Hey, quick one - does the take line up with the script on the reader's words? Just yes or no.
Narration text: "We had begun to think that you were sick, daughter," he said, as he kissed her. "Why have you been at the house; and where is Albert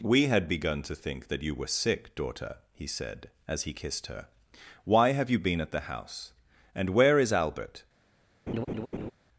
yes